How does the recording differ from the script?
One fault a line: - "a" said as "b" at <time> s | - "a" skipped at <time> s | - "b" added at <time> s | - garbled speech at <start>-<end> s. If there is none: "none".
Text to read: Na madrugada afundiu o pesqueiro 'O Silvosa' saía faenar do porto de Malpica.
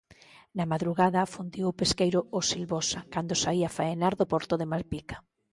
- "cando" added at 3.1 s